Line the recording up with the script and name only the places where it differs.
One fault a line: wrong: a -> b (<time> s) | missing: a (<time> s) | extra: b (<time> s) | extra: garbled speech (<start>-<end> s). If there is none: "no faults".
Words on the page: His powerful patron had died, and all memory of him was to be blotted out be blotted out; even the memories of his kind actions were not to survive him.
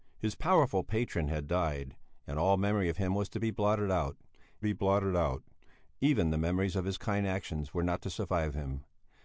no faults